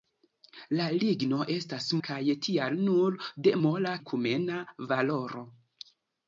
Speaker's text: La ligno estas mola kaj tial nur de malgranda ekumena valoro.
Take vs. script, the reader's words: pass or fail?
fail